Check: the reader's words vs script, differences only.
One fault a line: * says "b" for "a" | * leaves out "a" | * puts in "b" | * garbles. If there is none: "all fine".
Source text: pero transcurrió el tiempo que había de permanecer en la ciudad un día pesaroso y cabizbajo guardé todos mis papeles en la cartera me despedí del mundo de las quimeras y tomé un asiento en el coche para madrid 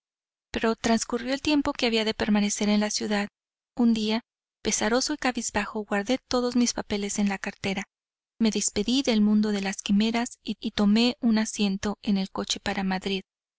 * puts in "y"